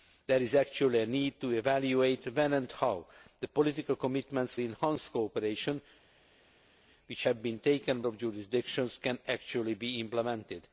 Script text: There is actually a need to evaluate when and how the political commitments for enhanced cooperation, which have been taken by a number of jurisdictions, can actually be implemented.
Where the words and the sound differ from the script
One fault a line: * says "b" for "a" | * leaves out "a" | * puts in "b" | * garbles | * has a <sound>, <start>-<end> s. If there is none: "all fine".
* leaves out "for"
* leaves out "by a number"